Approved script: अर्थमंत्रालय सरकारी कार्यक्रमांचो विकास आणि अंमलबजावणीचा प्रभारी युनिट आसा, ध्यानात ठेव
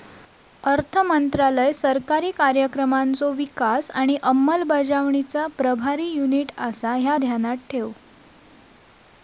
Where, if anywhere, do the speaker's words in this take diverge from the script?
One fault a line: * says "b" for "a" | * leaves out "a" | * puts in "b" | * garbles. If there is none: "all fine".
* puts in "ह्या"